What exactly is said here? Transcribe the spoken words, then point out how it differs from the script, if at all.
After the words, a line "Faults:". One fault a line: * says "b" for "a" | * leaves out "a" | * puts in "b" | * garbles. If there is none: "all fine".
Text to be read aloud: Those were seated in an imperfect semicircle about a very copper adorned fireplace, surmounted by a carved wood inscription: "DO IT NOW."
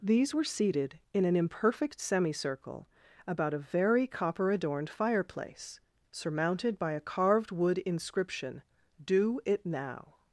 These were seated in an imperfect semicircle about a very copper adorned fireplace, surmounted by a carved wood inscription: "DO IT NOW."
Faults:
* says "These" for "Those"